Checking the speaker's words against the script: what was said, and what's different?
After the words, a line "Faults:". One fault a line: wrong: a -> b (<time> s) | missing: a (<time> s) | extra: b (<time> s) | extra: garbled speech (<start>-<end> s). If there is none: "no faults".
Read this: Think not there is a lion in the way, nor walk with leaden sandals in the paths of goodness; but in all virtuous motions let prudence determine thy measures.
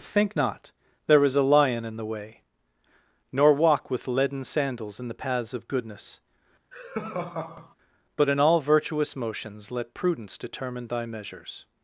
Think not there is a lion in the way, nor walk with leaden sandals in the paths of goodness; but in all virtuous motions let prudence determine thy measures.
Faults:
no faults